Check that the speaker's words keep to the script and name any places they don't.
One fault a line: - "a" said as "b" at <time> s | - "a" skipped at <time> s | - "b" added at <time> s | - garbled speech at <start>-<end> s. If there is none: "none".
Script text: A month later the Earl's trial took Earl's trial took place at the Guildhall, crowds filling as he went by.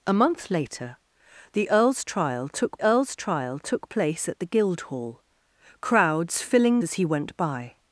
none